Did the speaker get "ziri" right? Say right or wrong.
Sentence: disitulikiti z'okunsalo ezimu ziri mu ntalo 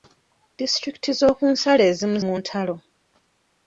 wrong